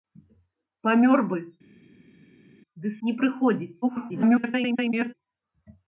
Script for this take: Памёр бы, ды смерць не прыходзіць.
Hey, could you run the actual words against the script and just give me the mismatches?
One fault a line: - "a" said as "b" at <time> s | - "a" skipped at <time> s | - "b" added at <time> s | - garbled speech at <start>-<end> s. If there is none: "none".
- "смерць" skipped at 2.9 s
- garbled speech at 3.8-5.1 s